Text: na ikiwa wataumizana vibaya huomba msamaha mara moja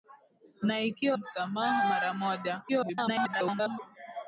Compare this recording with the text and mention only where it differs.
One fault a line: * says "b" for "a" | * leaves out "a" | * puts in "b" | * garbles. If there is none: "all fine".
* leaves out "wataumizana vibaya huomba"
* garbles